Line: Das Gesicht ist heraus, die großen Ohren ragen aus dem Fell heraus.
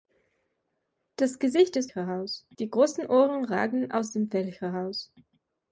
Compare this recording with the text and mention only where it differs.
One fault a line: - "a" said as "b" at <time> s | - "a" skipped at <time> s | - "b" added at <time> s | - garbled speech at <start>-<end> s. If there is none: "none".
none